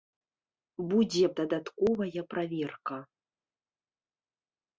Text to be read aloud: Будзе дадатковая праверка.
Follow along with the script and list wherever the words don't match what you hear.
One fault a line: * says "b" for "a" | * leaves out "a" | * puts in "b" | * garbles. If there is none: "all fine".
all fine